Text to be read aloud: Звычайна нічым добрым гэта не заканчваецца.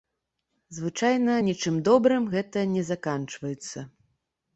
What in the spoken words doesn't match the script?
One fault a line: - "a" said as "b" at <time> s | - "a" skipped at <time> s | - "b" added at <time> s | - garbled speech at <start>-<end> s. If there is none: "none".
none